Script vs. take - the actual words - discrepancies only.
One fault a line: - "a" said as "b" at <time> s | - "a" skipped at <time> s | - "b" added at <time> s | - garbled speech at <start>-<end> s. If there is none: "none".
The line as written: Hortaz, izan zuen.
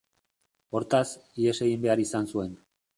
- "ihes egin behar" added at 1.4 s